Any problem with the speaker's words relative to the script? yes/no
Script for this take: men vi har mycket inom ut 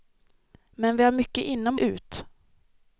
no